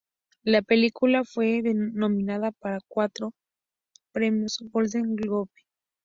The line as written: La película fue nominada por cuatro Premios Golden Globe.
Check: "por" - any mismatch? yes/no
yes